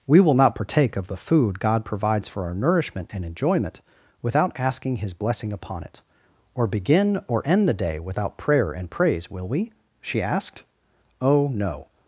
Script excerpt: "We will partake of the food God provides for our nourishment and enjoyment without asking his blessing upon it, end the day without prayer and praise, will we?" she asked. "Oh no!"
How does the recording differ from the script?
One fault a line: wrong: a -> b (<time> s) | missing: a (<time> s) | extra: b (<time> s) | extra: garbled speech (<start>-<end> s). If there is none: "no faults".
extra: not (0.3 s)
extra: or begin or (6.5 s)